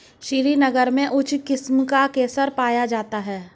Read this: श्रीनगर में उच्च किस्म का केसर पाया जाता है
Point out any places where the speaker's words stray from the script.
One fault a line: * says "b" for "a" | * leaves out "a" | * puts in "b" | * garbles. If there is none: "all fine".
all fine